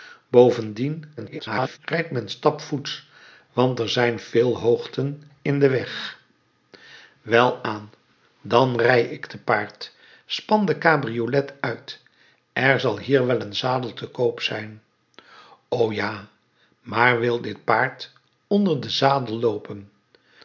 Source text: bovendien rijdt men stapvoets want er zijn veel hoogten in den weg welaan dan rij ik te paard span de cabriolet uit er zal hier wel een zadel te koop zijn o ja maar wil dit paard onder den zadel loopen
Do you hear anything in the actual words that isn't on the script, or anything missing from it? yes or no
yes